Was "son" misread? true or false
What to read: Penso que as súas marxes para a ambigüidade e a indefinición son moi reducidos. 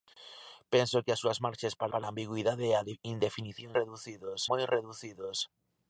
true